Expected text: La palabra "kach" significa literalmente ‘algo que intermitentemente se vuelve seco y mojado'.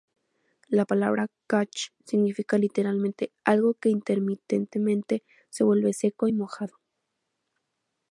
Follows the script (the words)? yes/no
yes